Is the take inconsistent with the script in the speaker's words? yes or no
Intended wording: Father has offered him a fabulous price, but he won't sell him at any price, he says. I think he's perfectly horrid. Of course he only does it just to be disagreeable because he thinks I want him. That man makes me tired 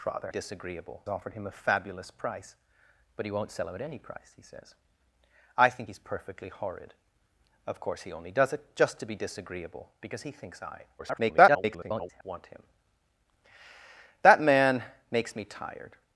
yes